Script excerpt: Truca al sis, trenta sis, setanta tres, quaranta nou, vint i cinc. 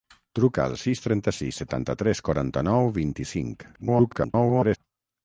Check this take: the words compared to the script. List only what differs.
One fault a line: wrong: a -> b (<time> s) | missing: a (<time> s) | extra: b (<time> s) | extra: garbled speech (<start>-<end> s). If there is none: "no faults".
extra: garbled speech (3.7-4.8 s)